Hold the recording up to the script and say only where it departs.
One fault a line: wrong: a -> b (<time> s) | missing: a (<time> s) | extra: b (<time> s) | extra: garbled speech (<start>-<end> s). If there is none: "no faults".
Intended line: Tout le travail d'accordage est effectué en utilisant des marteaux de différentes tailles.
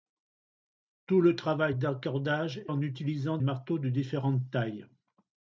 missing: est effectué (2.6 s)
missing: des (3.4 s)